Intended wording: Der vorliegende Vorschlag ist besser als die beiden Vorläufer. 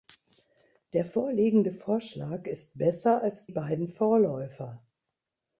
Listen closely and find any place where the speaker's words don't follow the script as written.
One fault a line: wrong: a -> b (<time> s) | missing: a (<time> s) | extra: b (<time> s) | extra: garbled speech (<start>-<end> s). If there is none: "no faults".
missing: die (3.5 s)